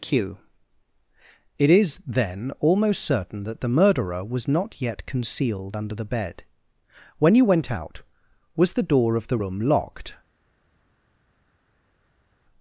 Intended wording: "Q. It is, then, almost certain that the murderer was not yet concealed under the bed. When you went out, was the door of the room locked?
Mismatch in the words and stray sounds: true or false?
false